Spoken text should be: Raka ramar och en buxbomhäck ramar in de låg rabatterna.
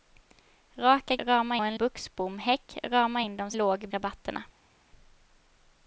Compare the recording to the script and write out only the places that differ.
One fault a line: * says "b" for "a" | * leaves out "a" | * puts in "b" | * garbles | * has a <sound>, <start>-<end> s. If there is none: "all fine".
all fine